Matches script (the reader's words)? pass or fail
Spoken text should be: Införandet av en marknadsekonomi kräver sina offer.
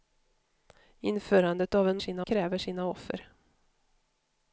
fail